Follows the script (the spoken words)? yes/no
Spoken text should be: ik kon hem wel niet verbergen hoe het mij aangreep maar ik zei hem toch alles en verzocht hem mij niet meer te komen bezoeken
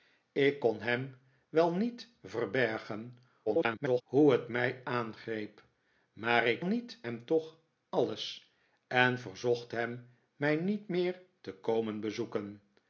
no